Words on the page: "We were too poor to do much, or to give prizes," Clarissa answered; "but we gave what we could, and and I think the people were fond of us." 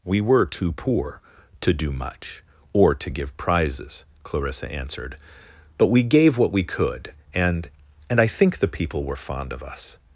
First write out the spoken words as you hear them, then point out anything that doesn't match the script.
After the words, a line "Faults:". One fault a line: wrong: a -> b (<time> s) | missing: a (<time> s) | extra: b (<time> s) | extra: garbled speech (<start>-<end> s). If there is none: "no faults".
"We were too poor to do much, or to give prizes," Clarissa answered; "but we gave what we could, and and I think the people were fond of us."
Faults:
no faults